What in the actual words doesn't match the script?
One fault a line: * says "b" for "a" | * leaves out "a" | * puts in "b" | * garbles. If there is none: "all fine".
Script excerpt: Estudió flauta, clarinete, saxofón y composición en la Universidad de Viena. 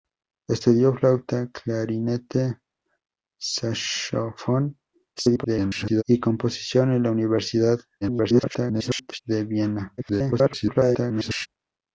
* garbles
* garbles
* garbles